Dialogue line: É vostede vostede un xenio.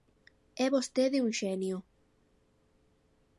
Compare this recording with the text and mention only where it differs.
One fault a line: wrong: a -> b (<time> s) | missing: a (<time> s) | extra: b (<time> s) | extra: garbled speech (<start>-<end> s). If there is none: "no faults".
missing: vostede (1.2 s)